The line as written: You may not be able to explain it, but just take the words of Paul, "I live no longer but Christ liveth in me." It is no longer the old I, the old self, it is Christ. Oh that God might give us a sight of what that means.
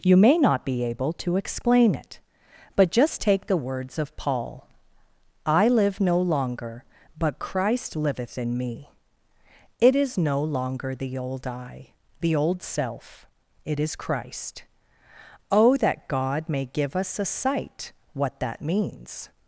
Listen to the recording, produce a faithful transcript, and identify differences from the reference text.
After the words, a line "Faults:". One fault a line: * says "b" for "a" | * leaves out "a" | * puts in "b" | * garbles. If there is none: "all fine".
You may not be able to explain it, but just take the words of Paul, "I live no longer but Christ liveth in me." It is no longer the old I, the old self, it is Christ. Oh that God may give us a sight what that means.
Faults:
* says "may" for "might"
* leaves out "of"